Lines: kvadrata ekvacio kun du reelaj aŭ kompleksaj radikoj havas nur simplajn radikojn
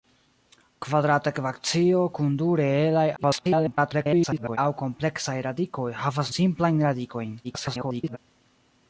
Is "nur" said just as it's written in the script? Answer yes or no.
no